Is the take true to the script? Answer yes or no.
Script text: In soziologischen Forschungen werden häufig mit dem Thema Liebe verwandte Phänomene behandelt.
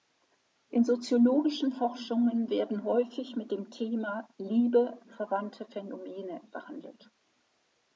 yes